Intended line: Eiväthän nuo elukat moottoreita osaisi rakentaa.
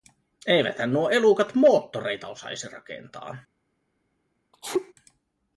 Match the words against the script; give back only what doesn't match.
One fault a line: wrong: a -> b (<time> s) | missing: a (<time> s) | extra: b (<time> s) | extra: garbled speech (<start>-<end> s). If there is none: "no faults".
no faults